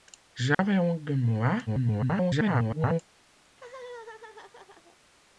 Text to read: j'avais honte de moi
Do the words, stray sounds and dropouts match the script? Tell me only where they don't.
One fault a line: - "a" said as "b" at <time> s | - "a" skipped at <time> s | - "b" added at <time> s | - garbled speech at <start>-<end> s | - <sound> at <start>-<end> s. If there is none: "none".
- dropout at 0.5-0.6 s
- garbled speech at 1.7-3.0 s
- laugh at 3.4-5.0 s